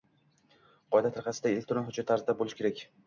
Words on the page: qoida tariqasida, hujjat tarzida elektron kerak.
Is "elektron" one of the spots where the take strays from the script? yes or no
yes